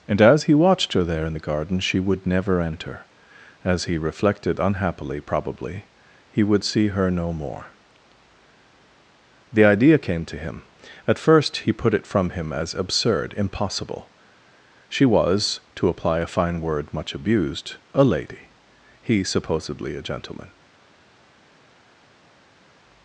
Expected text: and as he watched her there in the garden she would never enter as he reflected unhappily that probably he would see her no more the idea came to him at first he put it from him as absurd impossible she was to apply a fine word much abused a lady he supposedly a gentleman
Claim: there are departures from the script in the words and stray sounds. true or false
true